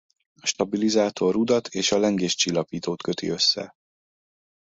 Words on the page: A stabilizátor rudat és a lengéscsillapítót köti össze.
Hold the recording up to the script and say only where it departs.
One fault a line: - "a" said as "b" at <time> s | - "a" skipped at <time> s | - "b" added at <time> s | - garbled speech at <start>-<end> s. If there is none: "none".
none